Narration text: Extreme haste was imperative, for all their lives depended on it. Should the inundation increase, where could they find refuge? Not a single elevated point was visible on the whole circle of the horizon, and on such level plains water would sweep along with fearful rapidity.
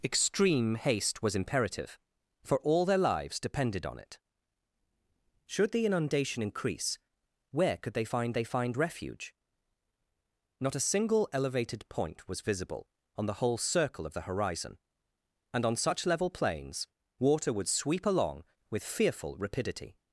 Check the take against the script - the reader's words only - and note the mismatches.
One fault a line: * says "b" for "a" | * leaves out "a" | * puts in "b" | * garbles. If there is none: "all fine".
* puts in "they find"